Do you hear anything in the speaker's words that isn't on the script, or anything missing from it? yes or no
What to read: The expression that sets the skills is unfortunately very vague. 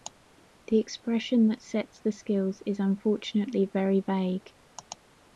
no